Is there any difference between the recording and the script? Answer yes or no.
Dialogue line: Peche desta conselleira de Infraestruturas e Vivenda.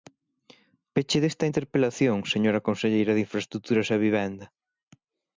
yes